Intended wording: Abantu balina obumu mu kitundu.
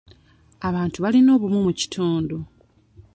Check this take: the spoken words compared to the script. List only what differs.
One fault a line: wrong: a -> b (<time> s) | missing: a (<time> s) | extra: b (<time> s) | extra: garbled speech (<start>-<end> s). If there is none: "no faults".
no faults